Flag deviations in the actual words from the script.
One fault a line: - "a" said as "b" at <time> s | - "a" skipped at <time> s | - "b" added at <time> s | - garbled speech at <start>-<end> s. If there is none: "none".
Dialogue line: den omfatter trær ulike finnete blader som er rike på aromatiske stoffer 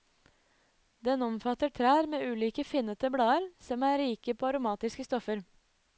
- "med" added at 2.1 s